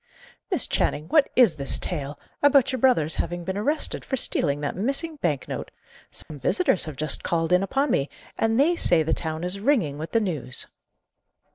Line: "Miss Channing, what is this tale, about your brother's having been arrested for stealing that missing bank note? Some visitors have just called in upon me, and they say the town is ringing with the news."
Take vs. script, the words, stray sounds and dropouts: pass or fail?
fail